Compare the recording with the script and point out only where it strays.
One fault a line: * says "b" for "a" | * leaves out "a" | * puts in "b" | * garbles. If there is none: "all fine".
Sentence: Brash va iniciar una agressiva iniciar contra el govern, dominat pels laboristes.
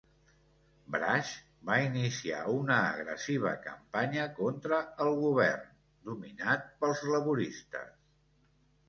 * says "campanya" for "iniciar"